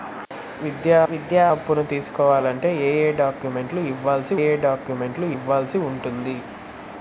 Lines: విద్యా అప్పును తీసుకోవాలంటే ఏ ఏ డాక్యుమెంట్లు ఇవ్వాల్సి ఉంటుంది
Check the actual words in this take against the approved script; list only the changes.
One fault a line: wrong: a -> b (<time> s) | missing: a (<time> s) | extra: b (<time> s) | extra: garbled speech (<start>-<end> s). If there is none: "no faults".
extra: విద్యా (1.1 s)
extra: ఏ డాక్యుమెంట్లు ఇవ్వాల్సి (4.4 s)